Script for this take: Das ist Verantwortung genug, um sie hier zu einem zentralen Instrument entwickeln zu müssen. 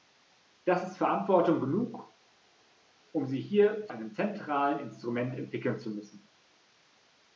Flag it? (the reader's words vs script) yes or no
yes